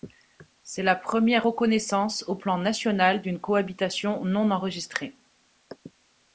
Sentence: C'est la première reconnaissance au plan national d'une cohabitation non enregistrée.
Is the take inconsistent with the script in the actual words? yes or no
no